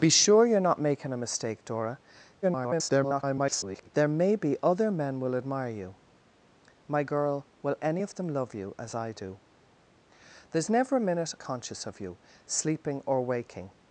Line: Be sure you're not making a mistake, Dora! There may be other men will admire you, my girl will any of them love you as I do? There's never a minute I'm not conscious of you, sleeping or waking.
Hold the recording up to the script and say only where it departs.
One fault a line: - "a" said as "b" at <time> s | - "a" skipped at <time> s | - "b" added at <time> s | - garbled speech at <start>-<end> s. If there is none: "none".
- garbled speech at 2.4-3.9 s
- "I'm not" skipped at 11.3 s